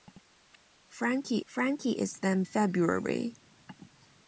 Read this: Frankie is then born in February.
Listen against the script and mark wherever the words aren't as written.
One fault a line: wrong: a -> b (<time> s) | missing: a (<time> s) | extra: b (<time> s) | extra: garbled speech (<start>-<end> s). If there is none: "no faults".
extra: frankie (1.4 s)
missing: born in (2.4 s)